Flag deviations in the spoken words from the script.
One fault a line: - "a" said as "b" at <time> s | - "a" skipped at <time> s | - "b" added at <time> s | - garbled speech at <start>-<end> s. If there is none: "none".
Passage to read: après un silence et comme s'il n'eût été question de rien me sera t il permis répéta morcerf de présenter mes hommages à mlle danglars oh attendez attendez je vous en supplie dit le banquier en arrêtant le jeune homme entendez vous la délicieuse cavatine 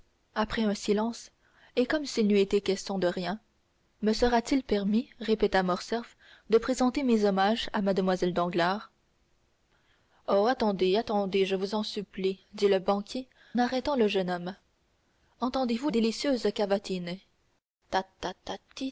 - "en" skipped at 13.3 s
- "la" skipped at 15.9 s